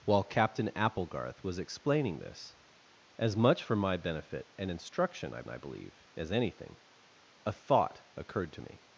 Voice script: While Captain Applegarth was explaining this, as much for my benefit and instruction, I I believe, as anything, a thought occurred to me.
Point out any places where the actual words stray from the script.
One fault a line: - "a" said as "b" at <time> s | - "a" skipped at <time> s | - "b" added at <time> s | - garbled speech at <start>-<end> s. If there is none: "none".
none